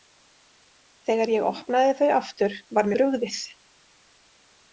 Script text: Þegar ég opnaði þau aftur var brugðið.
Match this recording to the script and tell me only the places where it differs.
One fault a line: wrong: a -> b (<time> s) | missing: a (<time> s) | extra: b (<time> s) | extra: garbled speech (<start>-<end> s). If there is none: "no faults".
no faults